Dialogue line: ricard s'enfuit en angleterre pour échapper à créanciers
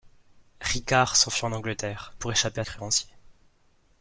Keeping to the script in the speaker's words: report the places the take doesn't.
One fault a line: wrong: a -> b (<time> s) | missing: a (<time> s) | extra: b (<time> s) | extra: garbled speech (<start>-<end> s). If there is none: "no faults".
no faults